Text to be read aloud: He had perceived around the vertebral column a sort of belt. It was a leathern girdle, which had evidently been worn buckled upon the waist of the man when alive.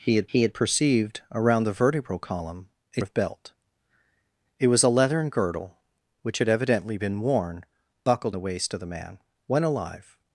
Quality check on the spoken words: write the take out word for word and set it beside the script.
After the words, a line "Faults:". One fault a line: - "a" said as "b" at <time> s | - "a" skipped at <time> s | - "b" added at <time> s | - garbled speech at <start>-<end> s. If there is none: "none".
He had he had perceived around the vertebral column a of belt. It was a leathern girdle, which had evidently been worn buckled the waist of the man when alive.
Faults:
- "he had" added at 0.3 s
- "sort" skipped at 3.0 s
- "upon" skipped at 8.4 s